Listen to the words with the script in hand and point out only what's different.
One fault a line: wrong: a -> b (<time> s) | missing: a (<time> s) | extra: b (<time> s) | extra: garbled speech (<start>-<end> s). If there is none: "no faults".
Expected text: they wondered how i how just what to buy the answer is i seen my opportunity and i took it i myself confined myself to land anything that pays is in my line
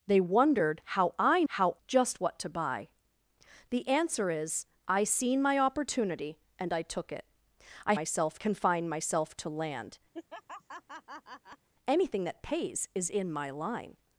no faults